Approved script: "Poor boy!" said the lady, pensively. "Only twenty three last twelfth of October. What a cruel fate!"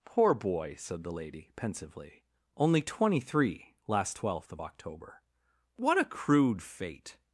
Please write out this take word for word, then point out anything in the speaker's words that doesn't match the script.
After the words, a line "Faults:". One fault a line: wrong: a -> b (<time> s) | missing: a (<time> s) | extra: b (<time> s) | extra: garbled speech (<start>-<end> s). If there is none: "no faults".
"Poor boy!" said the lady, pensively. "Only twenty three last twelfth of October. What a crude fate!"
Faults:
wrong: cruel -> crude (6.0 s)